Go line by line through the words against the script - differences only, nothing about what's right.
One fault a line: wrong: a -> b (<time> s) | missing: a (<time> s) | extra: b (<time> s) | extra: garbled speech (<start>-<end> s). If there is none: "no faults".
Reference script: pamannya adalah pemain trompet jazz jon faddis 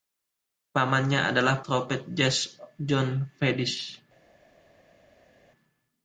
missing: pemain (1.6 s)